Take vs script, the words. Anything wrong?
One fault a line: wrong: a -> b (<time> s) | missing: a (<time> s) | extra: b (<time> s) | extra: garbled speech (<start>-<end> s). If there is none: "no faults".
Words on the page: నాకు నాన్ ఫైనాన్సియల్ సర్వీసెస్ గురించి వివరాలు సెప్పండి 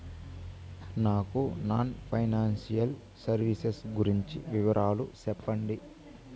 no faults